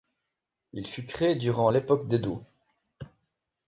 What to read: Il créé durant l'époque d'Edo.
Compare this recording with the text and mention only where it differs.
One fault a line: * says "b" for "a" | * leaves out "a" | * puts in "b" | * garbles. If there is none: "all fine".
* puts in "fut"